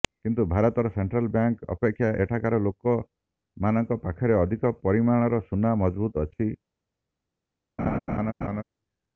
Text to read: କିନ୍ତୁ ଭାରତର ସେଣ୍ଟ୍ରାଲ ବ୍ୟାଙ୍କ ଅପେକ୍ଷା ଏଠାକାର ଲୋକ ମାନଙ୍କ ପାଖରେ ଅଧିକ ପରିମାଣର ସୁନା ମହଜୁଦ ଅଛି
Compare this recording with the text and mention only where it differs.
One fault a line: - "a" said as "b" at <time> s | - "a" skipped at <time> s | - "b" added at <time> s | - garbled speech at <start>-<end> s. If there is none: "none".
none